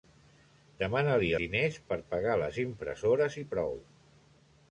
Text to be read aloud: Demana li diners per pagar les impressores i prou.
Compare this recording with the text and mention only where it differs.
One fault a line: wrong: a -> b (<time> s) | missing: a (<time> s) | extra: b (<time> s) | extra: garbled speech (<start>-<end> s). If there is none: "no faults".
no faults